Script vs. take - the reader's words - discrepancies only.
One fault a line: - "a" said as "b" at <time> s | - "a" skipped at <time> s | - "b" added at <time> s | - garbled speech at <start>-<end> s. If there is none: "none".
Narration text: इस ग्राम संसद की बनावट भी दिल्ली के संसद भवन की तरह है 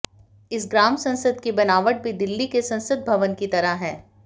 none